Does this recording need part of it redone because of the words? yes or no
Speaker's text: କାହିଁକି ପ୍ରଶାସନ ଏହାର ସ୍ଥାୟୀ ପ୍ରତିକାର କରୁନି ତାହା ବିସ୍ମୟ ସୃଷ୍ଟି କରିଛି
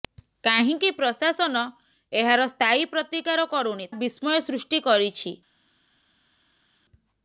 yes